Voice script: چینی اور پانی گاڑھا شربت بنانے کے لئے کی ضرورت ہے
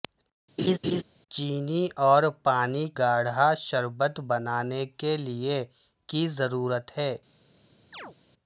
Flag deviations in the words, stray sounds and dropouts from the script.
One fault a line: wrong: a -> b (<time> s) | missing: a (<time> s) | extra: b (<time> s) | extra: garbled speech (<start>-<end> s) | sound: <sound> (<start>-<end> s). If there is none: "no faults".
sound: laugh (0.6-1.0 s)
sound: chirp (7.9-8.2 s)